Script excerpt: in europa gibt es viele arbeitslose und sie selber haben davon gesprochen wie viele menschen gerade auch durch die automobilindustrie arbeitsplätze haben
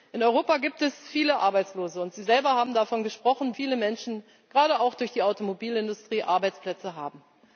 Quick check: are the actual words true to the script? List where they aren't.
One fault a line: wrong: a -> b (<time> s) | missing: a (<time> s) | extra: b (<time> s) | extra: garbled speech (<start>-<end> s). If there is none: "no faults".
missing: wie (3.5 s)